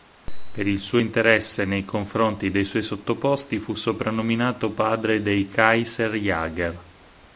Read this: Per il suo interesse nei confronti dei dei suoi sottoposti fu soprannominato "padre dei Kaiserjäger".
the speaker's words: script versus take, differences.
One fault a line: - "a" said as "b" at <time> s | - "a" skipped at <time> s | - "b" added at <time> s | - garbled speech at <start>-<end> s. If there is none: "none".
- "dei" skipped at 2.6 s